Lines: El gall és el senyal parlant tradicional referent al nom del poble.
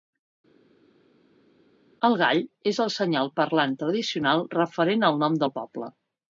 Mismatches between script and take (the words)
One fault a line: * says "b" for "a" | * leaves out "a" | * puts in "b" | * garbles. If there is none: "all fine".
all fine